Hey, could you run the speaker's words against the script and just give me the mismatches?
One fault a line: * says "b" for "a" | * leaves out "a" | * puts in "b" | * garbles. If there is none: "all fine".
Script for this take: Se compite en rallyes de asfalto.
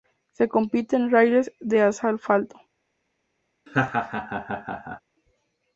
all fine